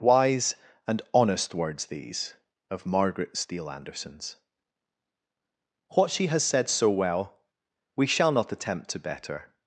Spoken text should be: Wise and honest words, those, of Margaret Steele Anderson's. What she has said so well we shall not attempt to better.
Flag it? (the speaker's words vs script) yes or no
yes